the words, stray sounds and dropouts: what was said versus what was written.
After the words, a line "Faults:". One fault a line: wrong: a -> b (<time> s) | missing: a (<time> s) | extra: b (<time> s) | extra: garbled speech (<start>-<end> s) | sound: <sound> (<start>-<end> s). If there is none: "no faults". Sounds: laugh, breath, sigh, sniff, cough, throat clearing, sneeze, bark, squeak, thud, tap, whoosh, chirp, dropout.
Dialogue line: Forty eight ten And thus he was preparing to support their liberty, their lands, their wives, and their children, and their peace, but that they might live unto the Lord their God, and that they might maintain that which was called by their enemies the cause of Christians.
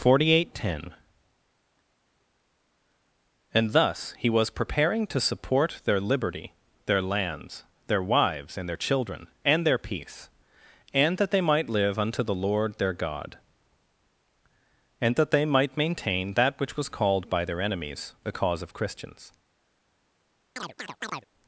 Forty eight ten And thus he was preparing to support their liberty, their lands, their wives, and their children, and their peace, and that they might live unto the Lord their God, and that they might maintain that which was called by their enemies the cause of Christians.
Faults:
wrong: but -> and (10.9 s)
sound: chirp (20.6-21.3 s)